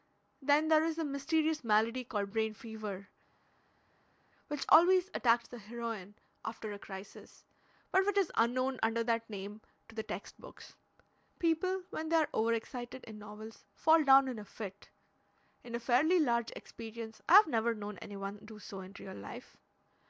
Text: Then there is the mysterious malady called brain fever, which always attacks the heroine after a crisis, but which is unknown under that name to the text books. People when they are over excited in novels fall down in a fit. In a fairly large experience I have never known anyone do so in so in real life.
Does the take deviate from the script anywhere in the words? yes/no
yes